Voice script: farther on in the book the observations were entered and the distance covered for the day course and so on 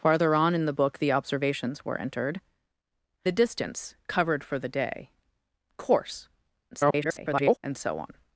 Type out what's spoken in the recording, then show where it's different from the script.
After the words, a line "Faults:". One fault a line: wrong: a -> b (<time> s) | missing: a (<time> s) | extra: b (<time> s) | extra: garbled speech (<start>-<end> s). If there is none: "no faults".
farther on in the book the observations were entered the distance covered for the day course [garbled] and so on
Faults:
missing: and (2.4 s)
extra: garbled speech (6.7-7.6 s)